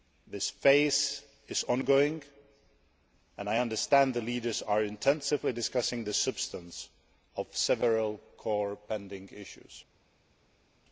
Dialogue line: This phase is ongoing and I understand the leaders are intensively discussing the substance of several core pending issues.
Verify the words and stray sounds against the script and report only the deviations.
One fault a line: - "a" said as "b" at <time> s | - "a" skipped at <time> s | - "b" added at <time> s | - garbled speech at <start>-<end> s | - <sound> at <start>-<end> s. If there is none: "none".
none